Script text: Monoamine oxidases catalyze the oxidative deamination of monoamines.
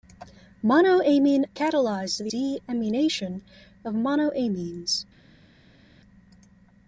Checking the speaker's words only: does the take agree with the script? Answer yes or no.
no